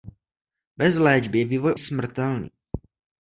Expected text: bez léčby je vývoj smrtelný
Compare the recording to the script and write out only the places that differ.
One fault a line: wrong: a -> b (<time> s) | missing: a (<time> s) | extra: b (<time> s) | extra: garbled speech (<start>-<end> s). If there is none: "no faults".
no faults